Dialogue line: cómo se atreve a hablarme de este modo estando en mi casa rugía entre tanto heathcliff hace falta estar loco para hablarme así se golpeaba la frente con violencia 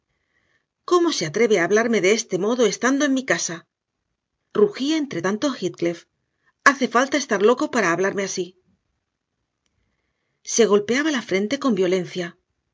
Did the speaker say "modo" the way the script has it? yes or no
yes